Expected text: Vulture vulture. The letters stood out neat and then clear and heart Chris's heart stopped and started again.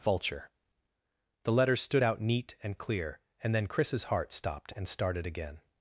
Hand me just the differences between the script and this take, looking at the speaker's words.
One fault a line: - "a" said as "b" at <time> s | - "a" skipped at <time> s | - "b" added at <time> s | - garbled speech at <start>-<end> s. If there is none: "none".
- "vulture" skipped at 0.5 s
- "then" skipped at 2.8 s
- "heart" said as "then" at 3.6 s